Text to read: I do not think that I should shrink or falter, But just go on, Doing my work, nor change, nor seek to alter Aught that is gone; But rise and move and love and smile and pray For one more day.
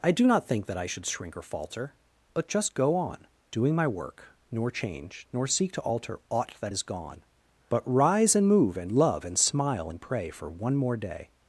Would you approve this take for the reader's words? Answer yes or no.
yes